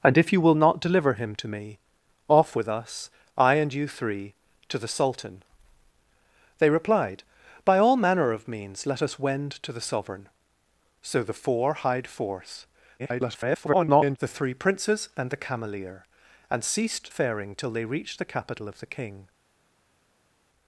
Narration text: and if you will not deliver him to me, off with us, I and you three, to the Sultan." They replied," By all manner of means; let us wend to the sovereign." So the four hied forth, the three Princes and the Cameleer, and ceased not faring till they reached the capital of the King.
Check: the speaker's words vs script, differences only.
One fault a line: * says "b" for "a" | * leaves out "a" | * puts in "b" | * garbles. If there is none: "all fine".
* garbles
* leaves out "not"